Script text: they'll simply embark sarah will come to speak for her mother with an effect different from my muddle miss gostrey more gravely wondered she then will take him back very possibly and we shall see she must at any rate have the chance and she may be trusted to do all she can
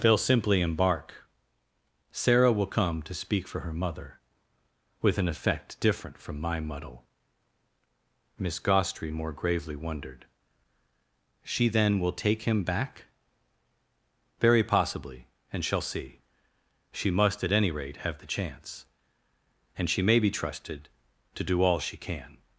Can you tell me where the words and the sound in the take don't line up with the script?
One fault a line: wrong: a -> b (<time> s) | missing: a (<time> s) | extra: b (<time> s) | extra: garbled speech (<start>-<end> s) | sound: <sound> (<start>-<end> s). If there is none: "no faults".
missing: we (15.6 s)